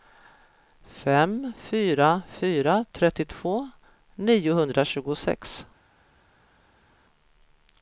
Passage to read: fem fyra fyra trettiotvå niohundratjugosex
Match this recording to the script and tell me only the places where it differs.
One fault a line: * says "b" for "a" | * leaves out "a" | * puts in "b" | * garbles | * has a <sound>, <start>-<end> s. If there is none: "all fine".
all fine